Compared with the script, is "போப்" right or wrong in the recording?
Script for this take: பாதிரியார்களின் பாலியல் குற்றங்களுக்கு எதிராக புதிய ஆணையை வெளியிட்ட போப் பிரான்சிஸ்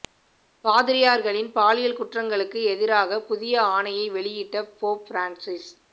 right